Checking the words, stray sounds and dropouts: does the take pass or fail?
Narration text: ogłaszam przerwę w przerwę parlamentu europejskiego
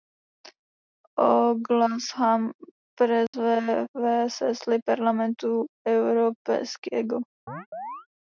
fail